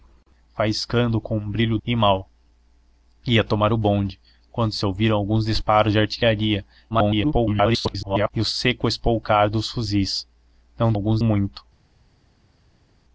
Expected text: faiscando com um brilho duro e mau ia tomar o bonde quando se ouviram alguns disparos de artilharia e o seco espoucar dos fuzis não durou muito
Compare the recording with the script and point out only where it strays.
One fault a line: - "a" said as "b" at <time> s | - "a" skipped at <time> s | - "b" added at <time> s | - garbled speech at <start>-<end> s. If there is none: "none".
- "duro" skipped at 1.8 s
- garbled speech at 6.9-8.3 s
- "durou" said as "alguns" at 10.9 s